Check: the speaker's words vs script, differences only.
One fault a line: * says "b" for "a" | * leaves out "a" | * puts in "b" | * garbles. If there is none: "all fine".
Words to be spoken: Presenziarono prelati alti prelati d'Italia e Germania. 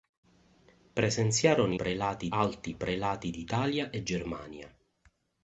all fine